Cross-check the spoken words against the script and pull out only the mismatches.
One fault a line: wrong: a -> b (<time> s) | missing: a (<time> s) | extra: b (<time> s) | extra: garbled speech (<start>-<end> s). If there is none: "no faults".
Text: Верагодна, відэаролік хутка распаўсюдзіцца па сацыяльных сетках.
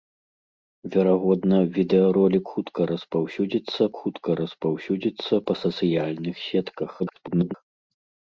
extra: хутка распаўсюдзіцца (4.0 s)
extra: garbled speech (7.0-7.5 s)